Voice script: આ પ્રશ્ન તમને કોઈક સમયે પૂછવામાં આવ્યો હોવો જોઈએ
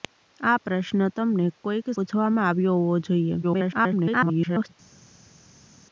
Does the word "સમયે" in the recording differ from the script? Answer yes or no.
yes